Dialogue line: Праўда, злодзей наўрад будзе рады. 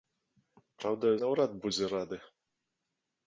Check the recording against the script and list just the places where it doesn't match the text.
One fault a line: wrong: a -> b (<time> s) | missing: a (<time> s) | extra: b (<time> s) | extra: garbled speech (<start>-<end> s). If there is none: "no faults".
missing: злодзей (1.1 s)